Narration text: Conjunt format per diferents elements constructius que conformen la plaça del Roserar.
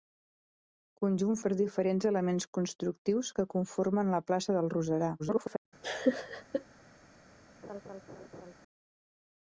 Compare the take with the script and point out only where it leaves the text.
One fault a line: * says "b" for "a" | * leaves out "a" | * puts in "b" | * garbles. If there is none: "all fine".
* leaves out "format"
* garbles